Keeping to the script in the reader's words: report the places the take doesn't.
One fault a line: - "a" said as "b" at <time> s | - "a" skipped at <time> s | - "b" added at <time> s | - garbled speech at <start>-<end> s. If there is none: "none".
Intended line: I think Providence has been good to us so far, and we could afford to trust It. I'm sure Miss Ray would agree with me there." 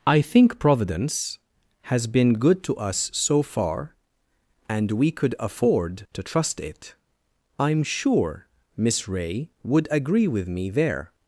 none